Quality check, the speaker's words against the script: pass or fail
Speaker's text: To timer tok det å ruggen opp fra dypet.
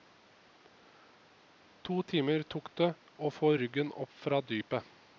fail